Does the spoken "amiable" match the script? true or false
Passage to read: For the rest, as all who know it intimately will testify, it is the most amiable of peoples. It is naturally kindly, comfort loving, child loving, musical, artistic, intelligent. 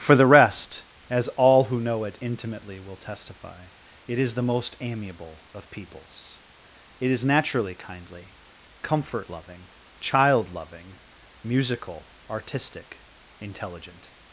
true